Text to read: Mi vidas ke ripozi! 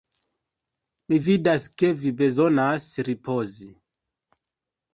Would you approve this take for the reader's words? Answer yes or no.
no